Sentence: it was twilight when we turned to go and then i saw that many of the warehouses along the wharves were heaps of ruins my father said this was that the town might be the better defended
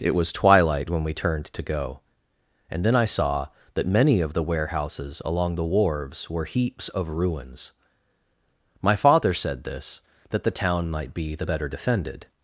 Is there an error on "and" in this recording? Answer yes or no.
no